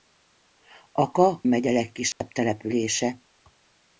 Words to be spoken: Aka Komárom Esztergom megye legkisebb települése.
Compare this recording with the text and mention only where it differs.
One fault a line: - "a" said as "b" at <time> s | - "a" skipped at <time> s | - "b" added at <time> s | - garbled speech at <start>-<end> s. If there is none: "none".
- "Komárom Esztergom" skipped at 1.4 s